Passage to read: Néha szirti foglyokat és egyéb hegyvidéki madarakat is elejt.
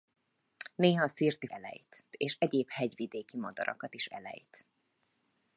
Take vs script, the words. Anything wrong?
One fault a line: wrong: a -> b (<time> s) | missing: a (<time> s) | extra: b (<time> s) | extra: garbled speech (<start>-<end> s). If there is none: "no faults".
wrong: foglyokat -> elejt (1.4 s)